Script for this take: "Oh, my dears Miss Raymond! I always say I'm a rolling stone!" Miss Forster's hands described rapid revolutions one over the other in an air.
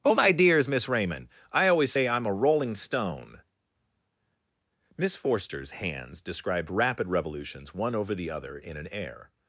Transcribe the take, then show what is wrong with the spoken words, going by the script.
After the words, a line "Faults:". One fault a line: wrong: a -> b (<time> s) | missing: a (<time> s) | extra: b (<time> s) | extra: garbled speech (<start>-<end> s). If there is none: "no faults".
"Oh, my dears Miss Raymond! I always say I'm a rolling stone!" Miss Forster's hands described rapid revolutions one over the other in an air.
Faults:
no faults